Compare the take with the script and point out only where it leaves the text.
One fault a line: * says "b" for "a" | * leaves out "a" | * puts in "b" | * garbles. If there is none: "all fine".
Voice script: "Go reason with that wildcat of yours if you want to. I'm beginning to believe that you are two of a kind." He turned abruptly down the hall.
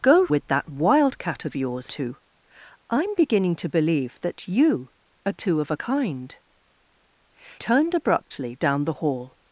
* leaves out "reason"
* leaves out "if you want"
* leaves out "He"